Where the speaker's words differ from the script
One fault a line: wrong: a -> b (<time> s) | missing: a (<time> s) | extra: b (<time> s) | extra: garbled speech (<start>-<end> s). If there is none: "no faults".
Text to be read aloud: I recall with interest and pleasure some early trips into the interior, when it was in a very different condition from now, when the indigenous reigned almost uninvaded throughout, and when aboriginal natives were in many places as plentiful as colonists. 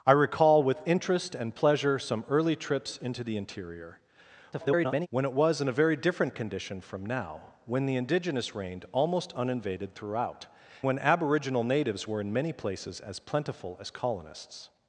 extra: garbled speech (4.5-5.1 s)
missing: and (10.4 s)